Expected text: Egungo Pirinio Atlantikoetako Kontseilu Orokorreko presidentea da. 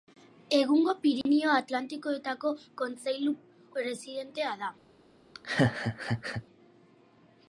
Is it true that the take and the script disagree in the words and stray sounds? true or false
true